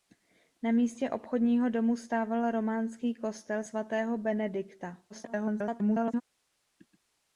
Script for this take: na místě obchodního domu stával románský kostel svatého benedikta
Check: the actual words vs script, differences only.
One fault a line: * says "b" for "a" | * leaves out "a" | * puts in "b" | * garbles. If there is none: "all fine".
* garbles